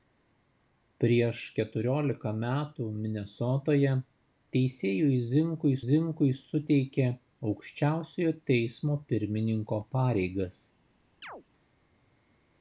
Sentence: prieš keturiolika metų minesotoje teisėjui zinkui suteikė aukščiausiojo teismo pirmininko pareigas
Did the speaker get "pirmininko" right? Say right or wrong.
right